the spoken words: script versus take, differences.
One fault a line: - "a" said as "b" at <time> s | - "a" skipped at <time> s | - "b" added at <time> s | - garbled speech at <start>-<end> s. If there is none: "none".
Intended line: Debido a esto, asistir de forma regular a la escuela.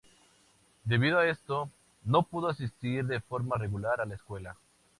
- "no pudo" added at 2.0 s